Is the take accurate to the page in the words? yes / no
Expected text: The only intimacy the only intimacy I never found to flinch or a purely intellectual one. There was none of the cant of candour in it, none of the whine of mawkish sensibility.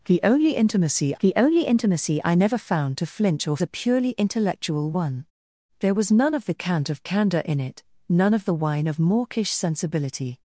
yes